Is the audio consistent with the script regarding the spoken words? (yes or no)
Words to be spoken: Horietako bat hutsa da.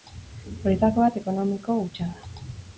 no